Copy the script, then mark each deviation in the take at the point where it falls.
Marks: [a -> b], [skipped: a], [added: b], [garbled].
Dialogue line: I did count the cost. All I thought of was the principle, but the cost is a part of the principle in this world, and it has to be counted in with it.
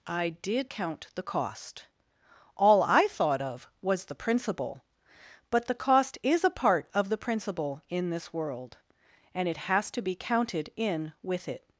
I did count the cost. All I thought of was the principle, but the cost is a part of the principle in this world, and it has to be counted in with it.